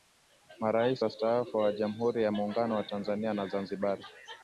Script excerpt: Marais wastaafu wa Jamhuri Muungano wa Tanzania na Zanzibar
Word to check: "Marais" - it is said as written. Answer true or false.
true